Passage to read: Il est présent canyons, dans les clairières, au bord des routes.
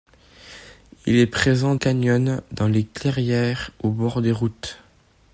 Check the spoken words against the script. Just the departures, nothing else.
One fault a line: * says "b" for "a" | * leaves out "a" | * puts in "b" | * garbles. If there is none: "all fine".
all fine